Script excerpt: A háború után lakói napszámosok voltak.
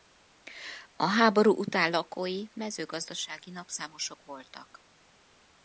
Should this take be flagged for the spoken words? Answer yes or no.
yes